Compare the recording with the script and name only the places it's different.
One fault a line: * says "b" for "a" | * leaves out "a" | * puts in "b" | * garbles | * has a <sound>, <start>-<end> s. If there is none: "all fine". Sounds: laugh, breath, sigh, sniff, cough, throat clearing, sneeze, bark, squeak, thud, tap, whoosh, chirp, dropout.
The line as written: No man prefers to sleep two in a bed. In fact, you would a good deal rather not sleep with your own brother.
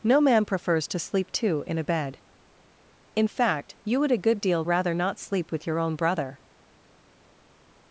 all fine